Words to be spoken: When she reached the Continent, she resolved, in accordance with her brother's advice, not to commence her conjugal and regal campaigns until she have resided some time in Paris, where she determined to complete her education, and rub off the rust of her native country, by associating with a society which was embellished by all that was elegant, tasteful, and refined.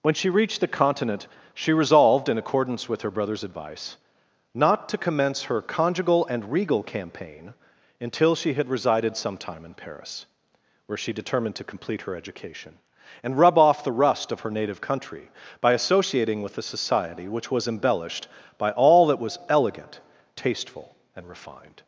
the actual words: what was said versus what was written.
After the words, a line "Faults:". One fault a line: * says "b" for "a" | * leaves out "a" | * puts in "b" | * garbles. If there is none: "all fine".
When she reached the Continent, she resolved, in accordance with her brother's advice, not to commence her conjugal and regal campaign until she had resided some time in Paris, where she determined to complete her education, and rub off the rust of her native country, by associating with a society which was embellished by all that was elegant, tasteful, and refined.
Faults:
* says "campaign" for "campaigns"
* says "had" for "have"